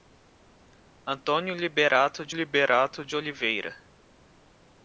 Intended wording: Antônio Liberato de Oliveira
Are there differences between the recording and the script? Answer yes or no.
yes